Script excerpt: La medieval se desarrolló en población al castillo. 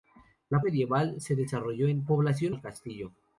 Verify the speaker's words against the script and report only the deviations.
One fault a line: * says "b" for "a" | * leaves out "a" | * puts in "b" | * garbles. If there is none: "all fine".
all fine